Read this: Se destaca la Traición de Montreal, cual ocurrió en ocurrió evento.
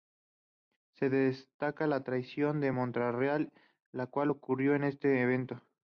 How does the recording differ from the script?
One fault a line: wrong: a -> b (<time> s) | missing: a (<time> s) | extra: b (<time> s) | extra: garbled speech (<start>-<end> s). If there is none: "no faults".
extra: la (3.9 s)
wrong: ocurrió -> este (4.8 s)